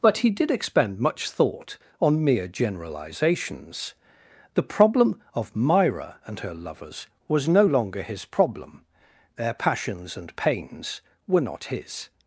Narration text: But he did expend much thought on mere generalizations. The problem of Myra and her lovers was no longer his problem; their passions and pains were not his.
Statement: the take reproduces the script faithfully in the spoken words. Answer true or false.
true